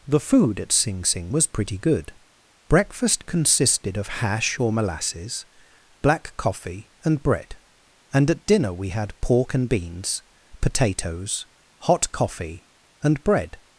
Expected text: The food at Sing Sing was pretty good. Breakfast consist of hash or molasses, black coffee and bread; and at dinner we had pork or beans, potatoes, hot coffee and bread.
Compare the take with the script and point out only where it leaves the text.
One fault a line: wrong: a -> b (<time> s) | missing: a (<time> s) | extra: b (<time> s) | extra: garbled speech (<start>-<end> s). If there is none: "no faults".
wrong: consist -> consisted (3.3 s)
wrong: or -> and (9.5 s)